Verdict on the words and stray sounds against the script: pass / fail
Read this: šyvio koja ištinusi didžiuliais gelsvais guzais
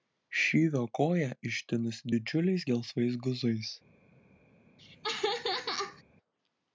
fail